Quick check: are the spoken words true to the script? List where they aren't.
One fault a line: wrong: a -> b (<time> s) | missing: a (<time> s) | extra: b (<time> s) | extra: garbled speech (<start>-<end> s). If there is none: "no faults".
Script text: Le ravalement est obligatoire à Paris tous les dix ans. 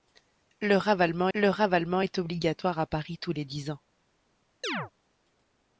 extra: le ravalement (1.3 s)